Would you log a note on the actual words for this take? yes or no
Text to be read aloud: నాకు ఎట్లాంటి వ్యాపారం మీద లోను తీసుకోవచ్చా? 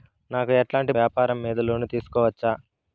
no